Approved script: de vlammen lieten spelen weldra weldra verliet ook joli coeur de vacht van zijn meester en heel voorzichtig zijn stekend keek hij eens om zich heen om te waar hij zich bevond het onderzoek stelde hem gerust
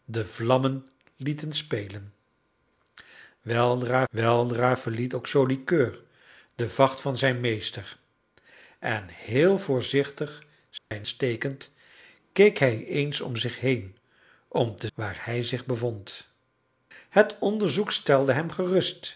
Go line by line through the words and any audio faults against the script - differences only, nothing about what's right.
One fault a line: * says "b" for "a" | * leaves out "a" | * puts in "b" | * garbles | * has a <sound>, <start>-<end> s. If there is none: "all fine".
* has a dropout, 10.8-10.9 s